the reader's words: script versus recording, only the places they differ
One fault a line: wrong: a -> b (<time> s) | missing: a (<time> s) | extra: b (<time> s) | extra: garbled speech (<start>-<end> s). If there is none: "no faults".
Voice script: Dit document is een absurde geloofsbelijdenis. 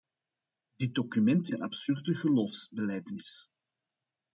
missing: is (1.5 s)